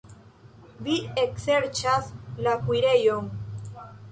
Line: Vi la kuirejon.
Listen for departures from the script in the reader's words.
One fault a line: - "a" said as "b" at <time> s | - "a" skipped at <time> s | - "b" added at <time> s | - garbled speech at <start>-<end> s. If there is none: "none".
- "ekserĉas" added at 1.2 s